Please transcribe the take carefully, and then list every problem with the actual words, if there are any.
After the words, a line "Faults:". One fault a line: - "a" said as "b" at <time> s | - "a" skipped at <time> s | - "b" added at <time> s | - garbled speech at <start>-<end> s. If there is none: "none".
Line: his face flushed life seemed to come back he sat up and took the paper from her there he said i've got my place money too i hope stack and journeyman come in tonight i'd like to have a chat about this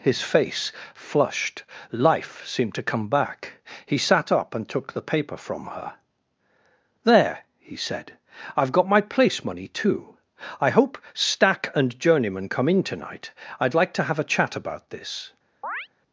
his face flushed life seemed to come back he sat up and took the paper from her there he said i've got my place money too i hope stack and journeyman come in tonight i'd like to have a chat about this
Faults:
none